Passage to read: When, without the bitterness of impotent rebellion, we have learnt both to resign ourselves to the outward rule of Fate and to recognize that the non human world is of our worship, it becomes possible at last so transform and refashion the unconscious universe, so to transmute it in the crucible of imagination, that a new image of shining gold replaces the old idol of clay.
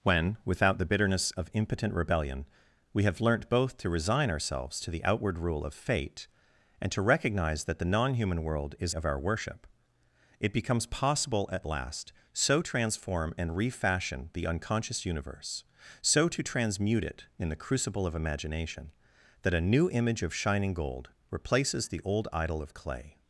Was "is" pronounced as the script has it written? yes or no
yes